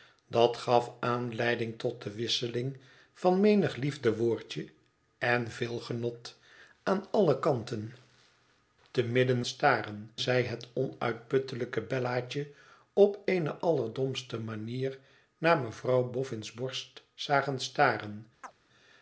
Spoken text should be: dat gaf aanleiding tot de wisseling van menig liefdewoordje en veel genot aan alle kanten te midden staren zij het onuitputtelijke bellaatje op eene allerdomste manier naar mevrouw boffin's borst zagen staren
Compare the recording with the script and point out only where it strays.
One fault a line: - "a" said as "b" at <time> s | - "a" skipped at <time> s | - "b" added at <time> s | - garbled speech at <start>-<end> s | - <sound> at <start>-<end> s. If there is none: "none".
- chirp at 18.4-18.5 s